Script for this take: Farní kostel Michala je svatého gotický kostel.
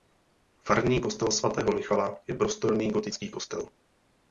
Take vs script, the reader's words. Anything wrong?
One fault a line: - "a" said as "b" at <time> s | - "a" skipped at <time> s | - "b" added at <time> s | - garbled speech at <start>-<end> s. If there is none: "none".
- "svatého" added at 1.3 s
- "svatého" said as "prostorný" at 2.3 s